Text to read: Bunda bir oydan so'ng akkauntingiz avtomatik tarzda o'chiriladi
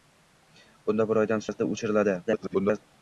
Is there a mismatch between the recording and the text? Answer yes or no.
yes